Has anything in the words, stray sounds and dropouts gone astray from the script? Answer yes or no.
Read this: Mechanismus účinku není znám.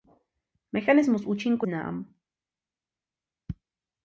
yes